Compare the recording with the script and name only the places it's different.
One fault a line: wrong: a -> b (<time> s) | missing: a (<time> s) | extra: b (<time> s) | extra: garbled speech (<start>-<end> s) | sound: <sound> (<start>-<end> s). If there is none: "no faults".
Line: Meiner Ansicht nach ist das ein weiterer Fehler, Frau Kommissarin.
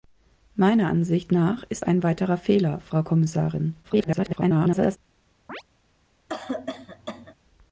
missing: das (1.8 s)
extra: garbled speech (3.8-5.0 s)
sound: chirp (5.5-5.6 s)
sound: cough (6.3-7.3 s)